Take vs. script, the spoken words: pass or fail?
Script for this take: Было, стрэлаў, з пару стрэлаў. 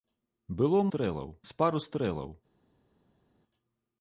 pass